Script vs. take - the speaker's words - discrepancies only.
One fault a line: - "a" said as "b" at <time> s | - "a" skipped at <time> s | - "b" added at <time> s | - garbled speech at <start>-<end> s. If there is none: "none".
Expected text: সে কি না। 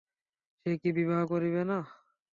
- "বিবাহ করিবে" added at 1.0 s